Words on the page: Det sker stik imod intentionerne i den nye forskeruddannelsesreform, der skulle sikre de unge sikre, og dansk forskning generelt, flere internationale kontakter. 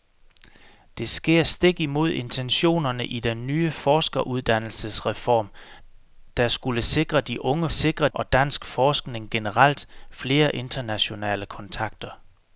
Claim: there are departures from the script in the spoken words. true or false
false